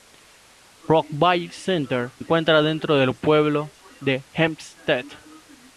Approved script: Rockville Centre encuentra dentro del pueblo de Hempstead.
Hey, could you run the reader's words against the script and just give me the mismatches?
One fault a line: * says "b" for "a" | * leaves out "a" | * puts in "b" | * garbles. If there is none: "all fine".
all fine